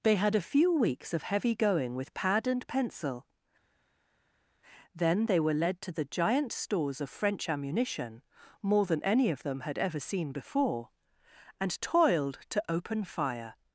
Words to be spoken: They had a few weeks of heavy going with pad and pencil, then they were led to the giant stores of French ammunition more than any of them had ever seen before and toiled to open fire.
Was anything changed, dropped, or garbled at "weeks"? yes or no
no